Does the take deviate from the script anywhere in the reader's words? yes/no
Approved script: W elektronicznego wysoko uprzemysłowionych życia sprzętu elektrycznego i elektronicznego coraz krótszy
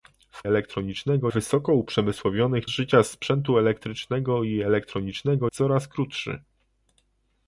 no